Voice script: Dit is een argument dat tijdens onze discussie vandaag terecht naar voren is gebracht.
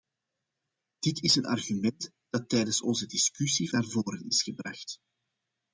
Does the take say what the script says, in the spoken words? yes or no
no